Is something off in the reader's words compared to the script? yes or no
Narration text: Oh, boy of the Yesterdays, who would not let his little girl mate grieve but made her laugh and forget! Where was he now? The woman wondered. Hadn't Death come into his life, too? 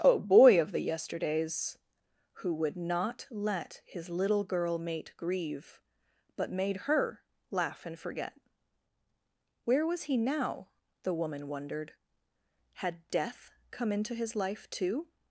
yes